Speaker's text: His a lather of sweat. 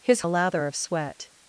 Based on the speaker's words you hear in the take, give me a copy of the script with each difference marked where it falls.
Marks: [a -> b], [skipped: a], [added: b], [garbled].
His a lather of sweat.